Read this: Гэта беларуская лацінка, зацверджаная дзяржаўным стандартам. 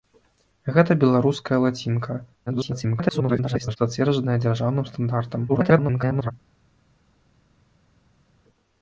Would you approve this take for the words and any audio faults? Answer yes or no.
no